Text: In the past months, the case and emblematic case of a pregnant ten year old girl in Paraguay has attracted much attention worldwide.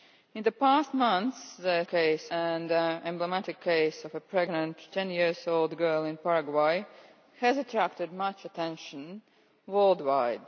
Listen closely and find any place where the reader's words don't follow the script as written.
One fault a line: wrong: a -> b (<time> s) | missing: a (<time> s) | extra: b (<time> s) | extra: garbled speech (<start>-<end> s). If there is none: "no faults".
no faults